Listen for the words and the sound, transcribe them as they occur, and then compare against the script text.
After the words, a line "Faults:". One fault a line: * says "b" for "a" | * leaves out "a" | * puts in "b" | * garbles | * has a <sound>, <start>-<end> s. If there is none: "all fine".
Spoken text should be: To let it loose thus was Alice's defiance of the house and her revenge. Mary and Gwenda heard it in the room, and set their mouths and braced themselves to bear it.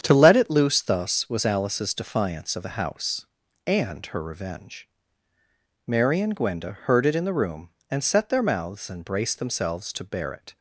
To let it loose thus was Alice's defiance of the house and her revenge. Mary and Gwenda heard it in the room, and set their mouths and braced themselves to bear it.
Faults:
all fine